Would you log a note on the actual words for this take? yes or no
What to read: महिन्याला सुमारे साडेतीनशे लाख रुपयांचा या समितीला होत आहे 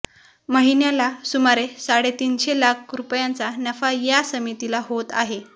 yes